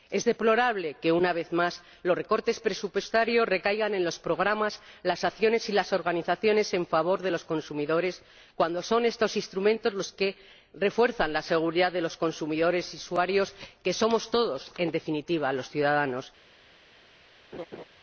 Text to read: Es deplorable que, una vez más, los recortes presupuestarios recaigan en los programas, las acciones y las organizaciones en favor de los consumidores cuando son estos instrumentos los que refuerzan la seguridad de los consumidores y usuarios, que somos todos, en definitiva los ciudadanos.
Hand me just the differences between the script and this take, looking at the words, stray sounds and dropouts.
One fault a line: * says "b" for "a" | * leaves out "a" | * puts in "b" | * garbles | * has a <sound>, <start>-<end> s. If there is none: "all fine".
* has a laugh, 17.5-17.8 s